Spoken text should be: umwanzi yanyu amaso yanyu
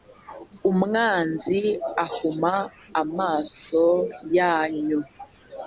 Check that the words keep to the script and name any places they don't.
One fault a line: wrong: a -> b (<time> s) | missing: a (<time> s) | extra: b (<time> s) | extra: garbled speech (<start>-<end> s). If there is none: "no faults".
wrong: yanyu -> ahuma (2.0 s)